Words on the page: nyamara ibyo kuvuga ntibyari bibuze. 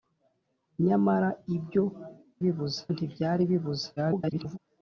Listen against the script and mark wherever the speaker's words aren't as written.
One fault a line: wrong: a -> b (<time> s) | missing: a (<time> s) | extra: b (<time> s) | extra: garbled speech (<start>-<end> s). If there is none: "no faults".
wrong: kuvuga -> bibuze (2.4 s)
extra: garbled speech (4.0-4.6 s)